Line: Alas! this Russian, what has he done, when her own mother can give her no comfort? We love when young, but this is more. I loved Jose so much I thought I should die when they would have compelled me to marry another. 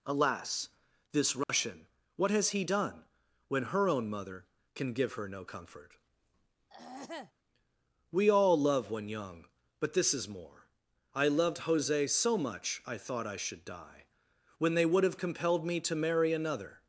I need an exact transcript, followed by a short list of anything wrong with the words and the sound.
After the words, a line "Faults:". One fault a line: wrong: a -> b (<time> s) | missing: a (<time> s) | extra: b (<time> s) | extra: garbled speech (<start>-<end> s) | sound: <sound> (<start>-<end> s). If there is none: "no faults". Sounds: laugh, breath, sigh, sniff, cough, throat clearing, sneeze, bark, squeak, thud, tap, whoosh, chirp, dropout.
Alas! this Russian, what has he done, when her own mother can give her no comfort? We all love when young, but this is more. I loved Jose so much I thought I should die when they would have compelled me to marry another.
Faults:
sound: dropout (1.4-1.5 s)
sound: throat clearing (6.7-7.3 s)
extra: all (8.3 s)